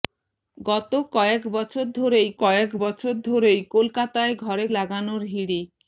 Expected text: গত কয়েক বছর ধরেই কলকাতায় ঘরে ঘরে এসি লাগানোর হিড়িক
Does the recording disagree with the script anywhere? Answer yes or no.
yes